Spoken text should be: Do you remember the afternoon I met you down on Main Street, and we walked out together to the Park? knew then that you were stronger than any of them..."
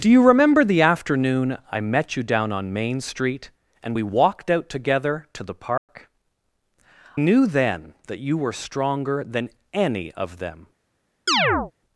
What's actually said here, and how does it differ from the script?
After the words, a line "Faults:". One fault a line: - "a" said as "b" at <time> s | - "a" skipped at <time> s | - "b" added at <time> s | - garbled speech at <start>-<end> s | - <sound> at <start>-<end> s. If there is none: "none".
Do you remember the afternoon I met you down on Main Street, and we walked out together to the Park? knew then that you were stronger than any of them..."
Faults:
- dropout at 5.8-5.9 s
- chirp at 11.3-11.7 s